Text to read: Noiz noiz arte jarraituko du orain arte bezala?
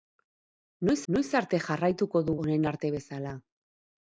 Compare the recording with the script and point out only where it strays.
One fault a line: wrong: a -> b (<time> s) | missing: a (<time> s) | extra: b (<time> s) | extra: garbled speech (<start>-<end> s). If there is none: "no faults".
no faults